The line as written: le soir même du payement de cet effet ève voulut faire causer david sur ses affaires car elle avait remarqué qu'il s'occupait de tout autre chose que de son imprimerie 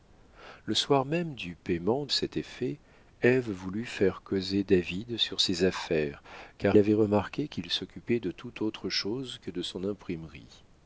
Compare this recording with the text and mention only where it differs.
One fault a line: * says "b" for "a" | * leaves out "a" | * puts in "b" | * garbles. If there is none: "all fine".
* leaves out "de"
* leaves out "elle"